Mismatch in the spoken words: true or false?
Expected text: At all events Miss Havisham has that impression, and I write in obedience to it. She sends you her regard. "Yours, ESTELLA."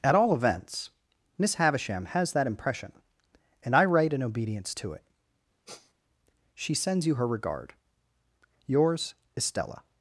false